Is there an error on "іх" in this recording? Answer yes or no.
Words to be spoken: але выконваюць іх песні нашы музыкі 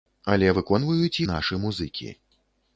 yes